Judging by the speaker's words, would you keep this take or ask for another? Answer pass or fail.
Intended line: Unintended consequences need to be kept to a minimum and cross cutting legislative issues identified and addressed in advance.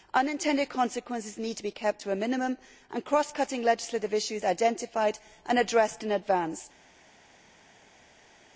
pass